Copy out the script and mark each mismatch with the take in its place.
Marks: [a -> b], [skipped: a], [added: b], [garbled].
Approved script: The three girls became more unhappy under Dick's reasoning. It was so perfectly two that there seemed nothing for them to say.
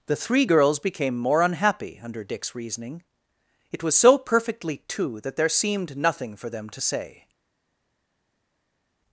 The three girls became more unhappy under Dick's reasoning. It was so perfectly two that there seemed nothing for them to say.